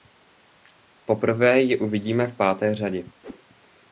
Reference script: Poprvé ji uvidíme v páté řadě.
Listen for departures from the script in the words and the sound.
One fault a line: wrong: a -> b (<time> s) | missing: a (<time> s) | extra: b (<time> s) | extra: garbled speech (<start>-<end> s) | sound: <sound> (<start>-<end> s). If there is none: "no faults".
sound: whoosh (3.2-3.4 s)